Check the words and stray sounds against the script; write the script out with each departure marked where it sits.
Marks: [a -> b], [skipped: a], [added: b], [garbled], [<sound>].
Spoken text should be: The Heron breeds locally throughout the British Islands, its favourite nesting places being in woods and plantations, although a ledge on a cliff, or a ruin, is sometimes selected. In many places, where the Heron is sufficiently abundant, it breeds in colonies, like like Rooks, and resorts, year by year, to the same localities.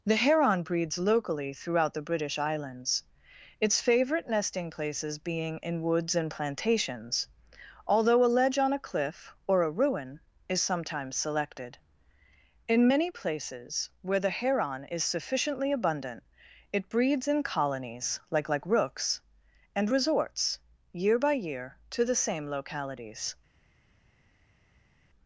The Heron breeds locally throughout the British Islands, its favourite nesting places being in woods and plantations, although a ledge on a cliff, or a ruin, is sometimes selected. In many places, where the Heron is sufficiently abundant, it breeds in colonies, like like Rooks, and resorts, year by year, to the same localities.